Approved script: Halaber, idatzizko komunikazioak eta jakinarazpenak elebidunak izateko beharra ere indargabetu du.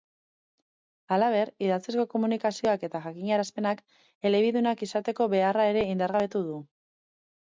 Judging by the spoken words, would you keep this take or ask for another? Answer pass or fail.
pass